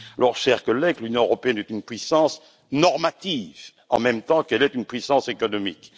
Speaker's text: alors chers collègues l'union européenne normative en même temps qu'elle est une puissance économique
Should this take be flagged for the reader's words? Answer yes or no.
yes